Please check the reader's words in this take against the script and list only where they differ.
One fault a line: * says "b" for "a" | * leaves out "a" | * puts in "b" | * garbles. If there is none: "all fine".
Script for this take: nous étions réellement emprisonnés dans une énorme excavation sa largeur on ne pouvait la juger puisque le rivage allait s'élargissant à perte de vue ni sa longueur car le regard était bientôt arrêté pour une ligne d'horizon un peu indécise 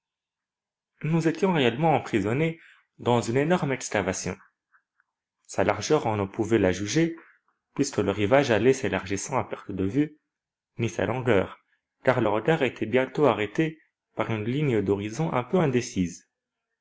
* says "par" for "pour"